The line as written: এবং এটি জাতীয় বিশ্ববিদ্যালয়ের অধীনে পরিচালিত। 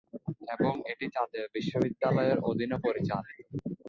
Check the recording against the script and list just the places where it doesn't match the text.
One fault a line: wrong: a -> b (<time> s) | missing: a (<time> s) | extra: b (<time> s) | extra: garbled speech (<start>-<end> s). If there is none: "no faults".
no faults